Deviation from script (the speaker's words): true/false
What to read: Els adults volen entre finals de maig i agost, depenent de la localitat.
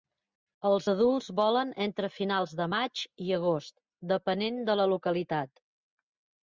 false